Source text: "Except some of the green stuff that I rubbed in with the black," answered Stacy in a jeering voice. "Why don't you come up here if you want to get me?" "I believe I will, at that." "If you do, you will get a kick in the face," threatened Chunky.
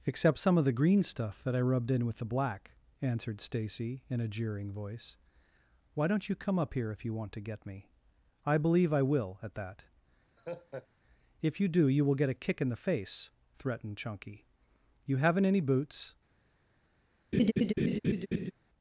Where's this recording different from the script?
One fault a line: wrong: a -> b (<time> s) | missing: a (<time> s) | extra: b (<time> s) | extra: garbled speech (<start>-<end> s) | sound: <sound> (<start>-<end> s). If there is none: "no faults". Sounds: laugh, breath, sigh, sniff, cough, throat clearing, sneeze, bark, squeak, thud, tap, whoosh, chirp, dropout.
sound: laugh (10.4-10.9 s)
extra: You haven't any boots (15.0 s)
sound: laugh (17.3-18.5 s)